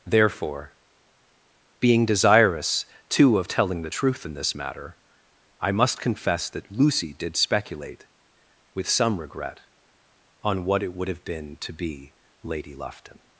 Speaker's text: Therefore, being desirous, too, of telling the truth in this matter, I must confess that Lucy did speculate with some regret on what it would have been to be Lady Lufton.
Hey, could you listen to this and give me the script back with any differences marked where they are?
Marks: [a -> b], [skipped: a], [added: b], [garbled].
Therefore, being desirous, too, of telling the truth in this matter, I must confess that Lucy did speculate with some regret on what it would have been to be Lady Lufton.